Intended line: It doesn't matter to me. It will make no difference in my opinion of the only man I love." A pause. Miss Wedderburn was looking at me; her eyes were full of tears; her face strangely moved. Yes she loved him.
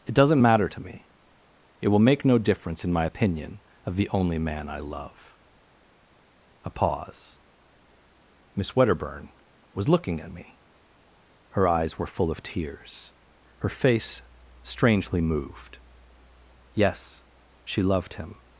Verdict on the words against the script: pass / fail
pass